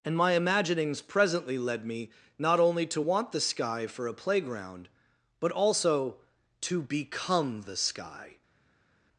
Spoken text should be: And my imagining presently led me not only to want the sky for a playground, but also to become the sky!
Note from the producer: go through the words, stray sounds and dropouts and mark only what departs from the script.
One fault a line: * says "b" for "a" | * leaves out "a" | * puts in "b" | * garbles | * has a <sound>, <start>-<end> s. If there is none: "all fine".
* says "imaginings" for "imagining"